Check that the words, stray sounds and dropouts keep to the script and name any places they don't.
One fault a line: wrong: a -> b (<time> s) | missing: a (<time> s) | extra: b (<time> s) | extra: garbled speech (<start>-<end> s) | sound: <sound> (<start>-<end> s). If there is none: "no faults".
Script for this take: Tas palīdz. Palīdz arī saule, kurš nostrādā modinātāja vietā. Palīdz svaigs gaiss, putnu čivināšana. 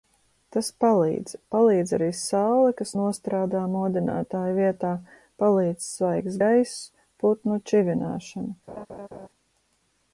wrong: kurš -> kas (2.8 s)
sound: laugh (8.7-9.3 s)